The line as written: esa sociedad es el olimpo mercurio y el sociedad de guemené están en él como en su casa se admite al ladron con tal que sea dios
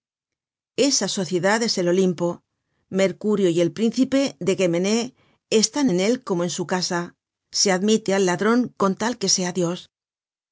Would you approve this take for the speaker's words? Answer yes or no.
no